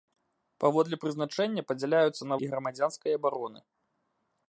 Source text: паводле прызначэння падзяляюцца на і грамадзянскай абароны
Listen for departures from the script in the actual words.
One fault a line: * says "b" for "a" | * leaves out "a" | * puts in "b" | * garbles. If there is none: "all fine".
all fine